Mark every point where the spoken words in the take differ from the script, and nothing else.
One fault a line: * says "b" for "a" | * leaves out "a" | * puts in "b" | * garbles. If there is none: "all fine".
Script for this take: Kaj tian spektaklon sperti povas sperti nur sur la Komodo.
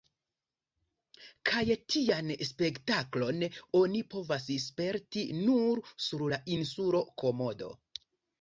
* says "oni" for "sperti"
* puts in "insulo"